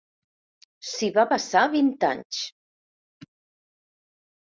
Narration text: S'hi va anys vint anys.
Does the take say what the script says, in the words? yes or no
no